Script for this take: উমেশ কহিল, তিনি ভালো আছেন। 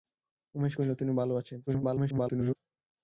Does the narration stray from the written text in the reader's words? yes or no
yes